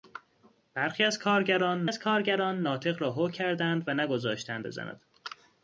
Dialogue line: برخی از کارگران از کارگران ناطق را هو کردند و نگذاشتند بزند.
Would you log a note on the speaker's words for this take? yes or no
no